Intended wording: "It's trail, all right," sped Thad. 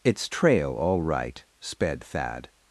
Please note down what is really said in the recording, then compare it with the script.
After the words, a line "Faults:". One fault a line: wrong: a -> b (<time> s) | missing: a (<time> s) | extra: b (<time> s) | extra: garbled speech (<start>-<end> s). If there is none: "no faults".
"It's trail, all right," sped Thad.
Faults:
no faults